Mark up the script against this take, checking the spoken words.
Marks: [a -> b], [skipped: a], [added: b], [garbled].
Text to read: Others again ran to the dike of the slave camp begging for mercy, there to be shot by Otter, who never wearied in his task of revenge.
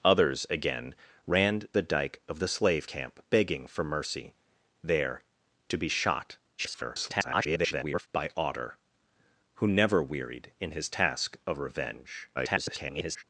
Others again ran [skipped: to] the dike of the slave camp begging for mercy, there to be shot [garbled] by Otter, who never wearied in his task of revenge. [garbled]